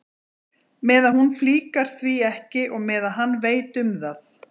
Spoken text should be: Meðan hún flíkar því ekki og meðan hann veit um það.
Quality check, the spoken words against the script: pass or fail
pass